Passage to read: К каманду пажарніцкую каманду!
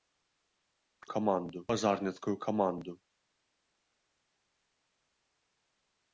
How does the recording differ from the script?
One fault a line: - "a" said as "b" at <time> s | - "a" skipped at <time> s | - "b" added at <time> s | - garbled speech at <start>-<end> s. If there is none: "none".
none